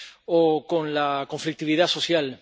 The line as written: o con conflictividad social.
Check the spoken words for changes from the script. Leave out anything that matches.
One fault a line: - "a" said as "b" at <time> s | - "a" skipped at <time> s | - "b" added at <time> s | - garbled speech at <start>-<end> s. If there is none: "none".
- "la" added at 0.9 s